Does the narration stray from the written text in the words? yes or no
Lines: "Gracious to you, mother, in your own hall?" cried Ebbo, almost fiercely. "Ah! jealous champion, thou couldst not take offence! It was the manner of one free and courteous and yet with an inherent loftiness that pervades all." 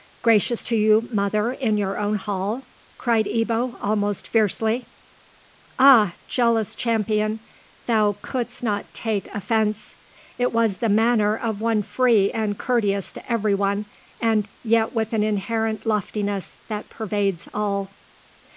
yes